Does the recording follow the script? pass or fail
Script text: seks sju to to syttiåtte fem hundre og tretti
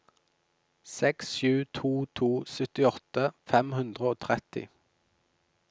pass